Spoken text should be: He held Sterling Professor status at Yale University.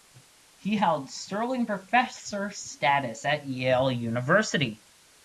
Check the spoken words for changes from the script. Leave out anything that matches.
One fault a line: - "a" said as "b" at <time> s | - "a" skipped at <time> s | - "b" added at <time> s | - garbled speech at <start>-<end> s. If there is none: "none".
none